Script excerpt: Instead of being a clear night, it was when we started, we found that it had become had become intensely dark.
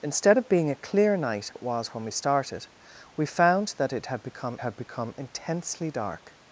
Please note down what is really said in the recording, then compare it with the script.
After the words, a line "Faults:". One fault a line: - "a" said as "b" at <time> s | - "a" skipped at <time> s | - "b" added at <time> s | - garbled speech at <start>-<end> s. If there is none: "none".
Instead of being a clear night, it was when we started, we found that it had become had become intensely dark.
Faults:
none